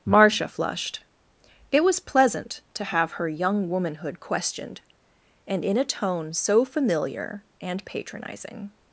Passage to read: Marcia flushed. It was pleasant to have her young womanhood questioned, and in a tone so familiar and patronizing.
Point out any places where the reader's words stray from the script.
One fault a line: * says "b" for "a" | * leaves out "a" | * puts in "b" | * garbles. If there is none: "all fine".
all fine